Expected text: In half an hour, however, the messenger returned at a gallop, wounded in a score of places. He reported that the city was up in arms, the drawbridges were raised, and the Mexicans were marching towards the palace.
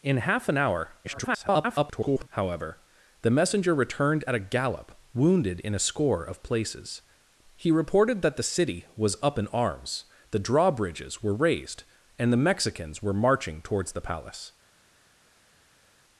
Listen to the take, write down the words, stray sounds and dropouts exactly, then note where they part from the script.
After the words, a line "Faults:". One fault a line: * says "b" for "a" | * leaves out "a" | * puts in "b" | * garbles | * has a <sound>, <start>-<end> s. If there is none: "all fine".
In half an hour, [garbled] however, the messenger returned at a gallop, wounded in a score of places. He reported that the city was up in arms, the drawbridges were raised, and the Mexicans were marching towards the palace.
Faults:
* garbles